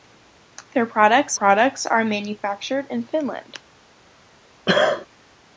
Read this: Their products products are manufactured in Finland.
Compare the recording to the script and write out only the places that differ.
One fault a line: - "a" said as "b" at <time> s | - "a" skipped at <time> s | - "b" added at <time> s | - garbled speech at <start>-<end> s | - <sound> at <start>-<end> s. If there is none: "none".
- cough at 4.7-5.1 s